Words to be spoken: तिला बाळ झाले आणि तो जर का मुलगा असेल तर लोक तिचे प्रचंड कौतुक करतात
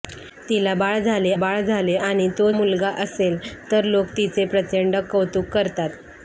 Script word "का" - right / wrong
wrong